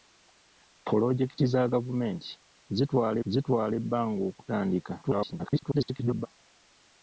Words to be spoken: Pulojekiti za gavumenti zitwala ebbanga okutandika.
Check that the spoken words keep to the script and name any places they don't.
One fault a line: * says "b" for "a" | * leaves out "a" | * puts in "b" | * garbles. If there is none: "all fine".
* puts in "zitwala"
* garbles